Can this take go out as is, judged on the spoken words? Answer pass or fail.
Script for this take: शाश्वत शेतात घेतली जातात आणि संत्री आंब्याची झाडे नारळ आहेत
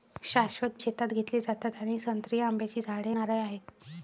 pass